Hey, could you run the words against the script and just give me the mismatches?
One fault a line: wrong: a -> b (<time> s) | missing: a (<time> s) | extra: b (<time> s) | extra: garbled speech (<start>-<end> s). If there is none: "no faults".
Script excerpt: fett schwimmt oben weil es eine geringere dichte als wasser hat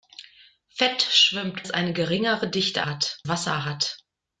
missing: oben weil (1.7 s)
wrong: als -> hat (2.9 s)